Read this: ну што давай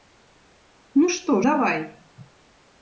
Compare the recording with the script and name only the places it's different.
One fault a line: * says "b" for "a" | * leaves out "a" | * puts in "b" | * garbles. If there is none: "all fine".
all fine